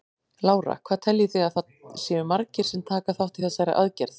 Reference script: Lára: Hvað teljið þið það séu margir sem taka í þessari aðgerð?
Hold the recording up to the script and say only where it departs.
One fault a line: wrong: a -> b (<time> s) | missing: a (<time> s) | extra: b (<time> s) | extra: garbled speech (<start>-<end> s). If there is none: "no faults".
extra: að (1.5 s)
extra: þátt (3.2 s)